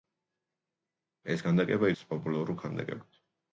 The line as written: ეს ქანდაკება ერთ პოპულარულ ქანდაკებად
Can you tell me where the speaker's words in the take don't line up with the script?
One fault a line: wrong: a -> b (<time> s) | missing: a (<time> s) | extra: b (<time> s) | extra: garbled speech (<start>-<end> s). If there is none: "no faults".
no faults